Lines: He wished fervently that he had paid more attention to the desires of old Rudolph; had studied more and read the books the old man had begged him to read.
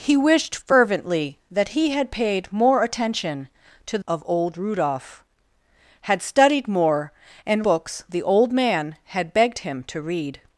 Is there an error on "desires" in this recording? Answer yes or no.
yes